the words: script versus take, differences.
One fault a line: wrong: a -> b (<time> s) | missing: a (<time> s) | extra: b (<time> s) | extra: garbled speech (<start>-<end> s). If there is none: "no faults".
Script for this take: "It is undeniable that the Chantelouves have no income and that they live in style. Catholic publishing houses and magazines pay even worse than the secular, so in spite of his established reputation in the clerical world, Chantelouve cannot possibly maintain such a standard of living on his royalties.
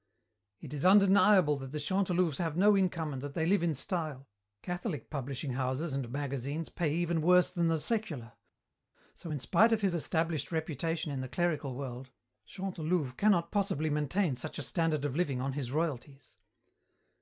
no faults